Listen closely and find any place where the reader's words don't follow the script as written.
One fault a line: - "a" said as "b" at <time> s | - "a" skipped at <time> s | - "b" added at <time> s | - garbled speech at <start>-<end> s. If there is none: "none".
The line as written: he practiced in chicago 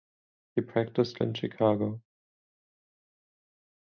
none